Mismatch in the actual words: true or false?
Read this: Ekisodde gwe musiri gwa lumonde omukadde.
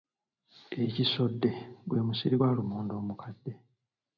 false